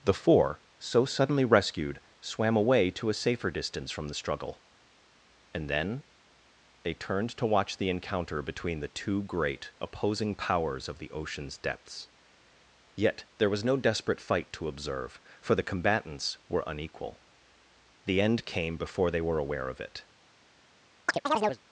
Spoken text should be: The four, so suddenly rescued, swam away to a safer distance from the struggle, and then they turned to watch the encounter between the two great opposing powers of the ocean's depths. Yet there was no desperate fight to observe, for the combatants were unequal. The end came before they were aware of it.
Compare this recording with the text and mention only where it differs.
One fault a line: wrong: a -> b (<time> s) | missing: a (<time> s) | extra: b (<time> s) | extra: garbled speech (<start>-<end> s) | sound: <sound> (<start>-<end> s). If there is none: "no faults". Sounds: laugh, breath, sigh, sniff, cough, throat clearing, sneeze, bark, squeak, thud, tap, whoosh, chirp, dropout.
sound: chirp (21.1-21.6 s)